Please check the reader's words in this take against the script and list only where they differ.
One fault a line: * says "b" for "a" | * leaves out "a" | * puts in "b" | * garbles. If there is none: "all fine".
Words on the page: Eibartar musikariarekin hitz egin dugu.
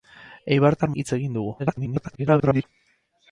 * leaves out "musikariarekin"
* garbles